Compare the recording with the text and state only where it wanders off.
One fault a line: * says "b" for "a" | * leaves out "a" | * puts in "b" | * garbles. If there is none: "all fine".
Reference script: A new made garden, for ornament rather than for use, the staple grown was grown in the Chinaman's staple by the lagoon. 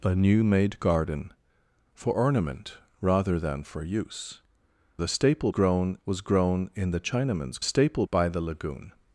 all fine